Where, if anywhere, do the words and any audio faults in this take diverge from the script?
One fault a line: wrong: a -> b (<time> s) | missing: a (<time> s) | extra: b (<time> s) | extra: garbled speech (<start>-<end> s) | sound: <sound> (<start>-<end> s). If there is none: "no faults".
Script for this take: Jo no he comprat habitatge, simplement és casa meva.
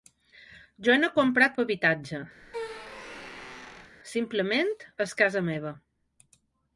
sound: squeak (2.4-4.0 s)